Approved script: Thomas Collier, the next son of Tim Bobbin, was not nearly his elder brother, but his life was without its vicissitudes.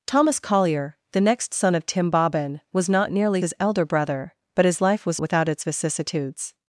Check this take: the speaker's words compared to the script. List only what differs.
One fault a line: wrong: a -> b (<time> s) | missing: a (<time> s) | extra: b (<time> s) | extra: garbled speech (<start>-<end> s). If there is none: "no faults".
no faults